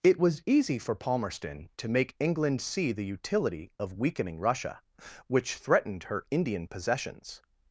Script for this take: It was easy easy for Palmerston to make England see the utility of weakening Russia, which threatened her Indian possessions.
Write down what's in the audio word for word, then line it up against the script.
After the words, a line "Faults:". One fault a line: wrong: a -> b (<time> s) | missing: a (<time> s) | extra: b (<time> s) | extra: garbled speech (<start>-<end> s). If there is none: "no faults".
It was easy for Palmerston to make England see the utility of weakening Russia, which threatened her Indian possessions.
Faults:
missing: easy (0.8 s)